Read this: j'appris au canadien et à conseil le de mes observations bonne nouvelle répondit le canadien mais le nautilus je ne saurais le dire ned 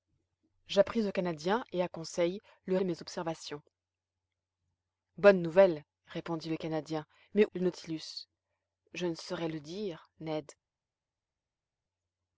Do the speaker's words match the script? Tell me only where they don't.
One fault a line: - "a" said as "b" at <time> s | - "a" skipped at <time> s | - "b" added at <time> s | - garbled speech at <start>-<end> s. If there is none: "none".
none